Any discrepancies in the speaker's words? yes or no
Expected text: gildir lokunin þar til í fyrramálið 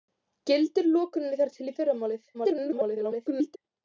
yes